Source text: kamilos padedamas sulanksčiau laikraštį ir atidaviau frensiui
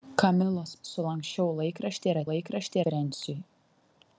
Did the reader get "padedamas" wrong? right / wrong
wrong